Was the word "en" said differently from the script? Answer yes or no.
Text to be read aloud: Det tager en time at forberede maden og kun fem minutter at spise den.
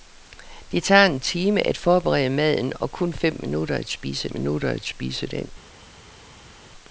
no